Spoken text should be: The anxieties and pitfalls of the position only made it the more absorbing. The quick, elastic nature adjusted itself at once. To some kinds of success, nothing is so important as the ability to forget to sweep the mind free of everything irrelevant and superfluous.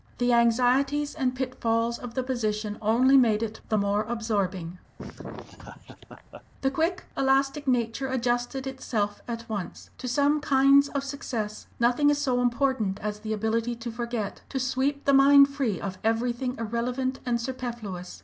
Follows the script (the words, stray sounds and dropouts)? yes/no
no